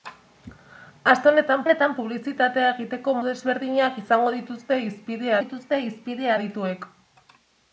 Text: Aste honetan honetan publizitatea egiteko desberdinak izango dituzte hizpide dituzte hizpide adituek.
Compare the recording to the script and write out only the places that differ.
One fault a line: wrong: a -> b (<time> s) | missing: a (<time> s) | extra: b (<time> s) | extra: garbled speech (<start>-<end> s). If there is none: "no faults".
no faults